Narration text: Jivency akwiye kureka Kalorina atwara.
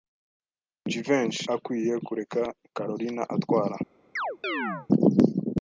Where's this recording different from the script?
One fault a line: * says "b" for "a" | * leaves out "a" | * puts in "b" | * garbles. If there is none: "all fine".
all fine